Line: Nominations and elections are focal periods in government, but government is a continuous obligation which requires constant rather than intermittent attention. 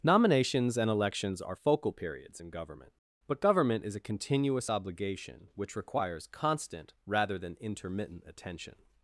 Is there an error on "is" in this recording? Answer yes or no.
no